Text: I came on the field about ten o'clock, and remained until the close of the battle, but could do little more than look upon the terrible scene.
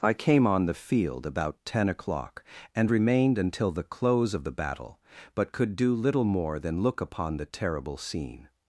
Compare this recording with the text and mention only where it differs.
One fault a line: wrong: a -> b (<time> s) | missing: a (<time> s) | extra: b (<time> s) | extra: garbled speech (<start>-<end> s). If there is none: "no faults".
no faults